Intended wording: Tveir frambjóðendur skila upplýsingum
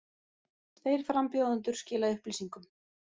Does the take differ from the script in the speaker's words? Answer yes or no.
no